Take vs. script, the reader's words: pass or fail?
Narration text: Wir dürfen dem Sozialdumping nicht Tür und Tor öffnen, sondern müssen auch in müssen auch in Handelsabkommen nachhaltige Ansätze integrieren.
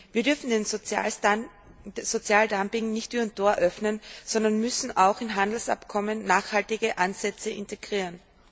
fail